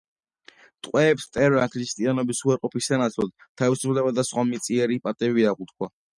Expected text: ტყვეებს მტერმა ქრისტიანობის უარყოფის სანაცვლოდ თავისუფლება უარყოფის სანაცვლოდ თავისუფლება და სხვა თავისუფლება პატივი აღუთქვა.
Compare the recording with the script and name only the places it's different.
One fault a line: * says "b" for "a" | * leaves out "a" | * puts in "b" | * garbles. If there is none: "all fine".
* leaves out "უარყოფის სანაცვლოდ თავისუფლება"
* says "მიწიერი" for "თავისუფლება"